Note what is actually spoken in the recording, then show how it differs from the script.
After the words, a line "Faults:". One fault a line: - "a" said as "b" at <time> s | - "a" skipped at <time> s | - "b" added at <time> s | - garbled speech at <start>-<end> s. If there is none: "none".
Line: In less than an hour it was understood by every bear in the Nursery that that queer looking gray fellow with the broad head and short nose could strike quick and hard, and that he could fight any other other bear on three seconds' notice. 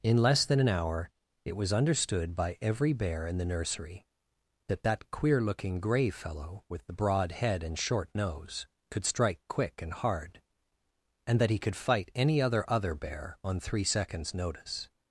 In less than an hour it was understood by every bear in the Nursery that that queer looking gray fellow with the broad head and short nose could strike quick and hard, and that he could fight any other other bear on three seconds' notice.
Faults:
none